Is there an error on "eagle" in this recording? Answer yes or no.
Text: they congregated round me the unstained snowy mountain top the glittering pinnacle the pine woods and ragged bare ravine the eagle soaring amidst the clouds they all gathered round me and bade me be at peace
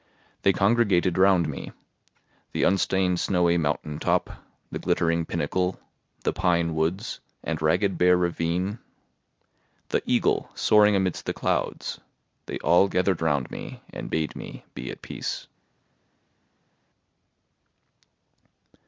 no